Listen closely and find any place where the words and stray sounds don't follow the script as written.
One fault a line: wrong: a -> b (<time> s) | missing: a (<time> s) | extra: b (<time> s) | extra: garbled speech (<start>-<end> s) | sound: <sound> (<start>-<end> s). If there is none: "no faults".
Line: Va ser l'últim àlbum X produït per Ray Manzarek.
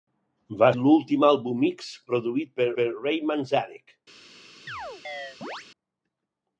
missing: ser (0.7 s)
extra: per (2.8 s)
sound: chirp (4.7-5.7 s)